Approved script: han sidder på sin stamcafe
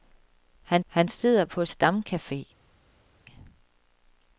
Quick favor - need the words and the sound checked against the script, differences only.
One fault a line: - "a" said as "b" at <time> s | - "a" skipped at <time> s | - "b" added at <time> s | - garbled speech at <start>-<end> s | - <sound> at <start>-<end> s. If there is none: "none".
- "han" added at 0.9 s
- "sin" skipped at 1.7 s